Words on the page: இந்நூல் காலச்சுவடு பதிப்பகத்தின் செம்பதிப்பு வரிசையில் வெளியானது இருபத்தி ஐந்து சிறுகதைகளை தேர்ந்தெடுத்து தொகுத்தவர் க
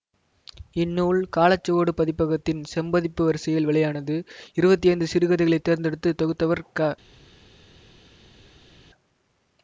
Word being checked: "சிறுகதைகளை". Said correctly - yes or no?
yes